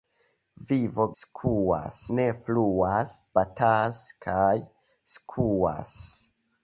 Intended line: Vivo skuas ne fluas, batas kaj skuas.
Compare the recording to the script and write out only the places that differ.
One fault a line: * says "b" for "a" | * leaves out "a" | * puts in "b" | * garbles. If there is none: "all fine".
all fine